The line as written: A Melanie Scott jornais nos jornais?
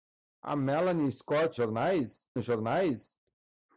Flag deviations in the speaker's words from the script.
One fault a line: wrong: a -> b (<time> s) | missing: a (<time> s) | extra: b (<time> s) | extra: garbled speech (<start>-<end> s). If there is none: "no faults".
no faults